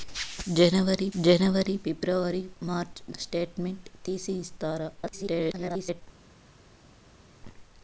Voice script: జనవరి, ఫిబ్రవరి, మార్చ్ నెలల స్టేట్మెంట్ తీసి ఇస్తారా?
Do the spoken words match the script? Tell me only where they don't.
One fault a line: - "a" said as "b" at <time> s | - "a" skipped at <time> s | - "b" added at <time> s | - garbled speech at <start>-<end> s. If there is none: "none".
- "జనవరి" added at 1.2 s
- "నెలల" skipped at 3.2 s
- garbled speech at 5.0-6.0 s